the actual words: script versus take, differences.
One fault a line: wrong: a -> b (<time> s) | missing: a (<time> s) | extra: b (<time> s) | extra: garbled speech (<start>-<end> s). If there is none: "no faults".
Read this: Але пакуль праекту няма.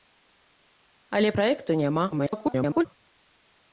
missing: пакуль (1.3 s)
extra: garbled speech (2.1-2.9 s)